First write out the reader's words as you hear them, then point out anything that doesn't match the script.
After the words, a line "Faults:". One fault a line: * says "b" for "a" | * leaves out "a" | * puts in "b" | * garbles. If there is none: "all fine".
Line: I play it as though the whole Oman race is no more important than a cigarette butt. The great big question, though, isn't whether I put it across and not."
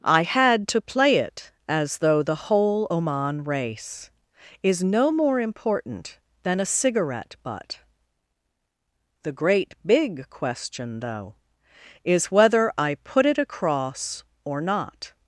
I had to play it as though the whole Oman race is no more important than a cigarette butt. The great big question, though, is whether I put it across or not."
Faults:
* puts in "had to"
* says "is" for "isn't"
* says "or" for "and"